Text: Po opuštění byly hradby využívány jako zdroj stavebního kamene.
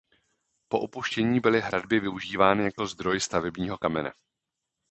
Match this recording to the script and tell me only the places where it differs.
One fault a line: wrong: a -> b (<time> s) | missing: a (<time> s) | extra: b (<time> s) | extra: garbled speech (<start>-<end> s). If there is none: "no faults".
no faults